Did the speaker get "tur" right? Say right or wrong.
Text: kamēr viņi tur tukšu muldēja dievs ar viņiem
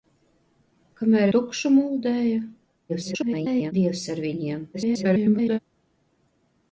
wrong